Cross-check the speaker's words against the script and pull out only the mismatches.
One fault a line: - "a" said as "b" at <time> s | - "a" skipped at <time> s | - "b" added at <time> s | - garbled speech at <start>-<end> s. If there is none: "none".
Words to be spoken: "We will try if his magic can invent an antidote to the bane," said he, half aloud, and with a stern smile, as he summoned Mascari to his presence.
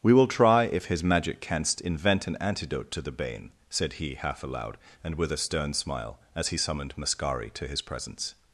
- "can" said as "canst" at 1.4 s